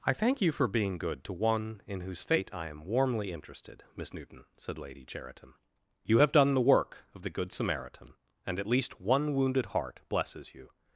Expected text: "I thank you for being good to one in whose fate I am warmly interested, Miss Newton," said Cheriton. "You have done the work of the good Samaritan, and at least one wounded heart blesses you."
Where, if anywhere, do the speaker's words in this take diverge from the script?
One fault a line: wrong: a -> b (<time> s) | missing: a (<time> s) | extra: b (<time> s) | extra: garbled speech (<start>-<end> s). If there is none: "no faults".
extra: Lady (4.8 s)